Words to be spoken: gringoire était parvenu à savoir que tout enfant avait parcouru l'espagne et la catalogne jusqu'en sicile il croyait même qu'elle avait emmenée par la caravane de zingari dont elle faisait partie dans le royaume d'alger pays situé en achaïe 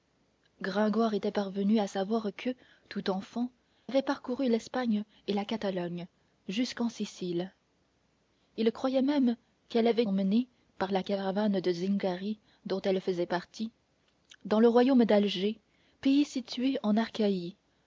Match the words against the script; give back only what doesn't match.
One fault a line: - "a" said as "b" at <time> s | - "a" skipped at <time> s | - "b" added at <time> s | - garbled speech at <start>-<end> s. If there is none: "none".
none